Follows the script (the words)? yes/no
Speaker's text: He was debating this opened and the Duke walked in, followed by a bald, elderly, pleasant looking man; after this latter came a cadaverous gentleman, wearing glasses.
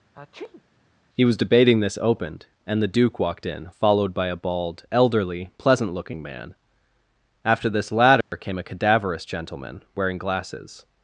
yes